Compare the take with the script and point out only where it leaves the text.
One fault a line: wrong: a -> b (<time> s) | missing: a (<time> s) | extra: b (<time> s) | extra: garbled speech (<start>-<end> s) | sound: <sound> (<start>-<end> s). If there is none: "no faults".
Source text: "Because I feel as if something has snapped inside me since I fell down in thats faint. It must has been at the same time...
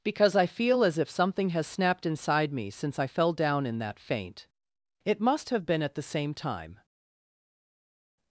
wrong: thats -> that (3.8 s)
wrong: has -> have (5.5 s)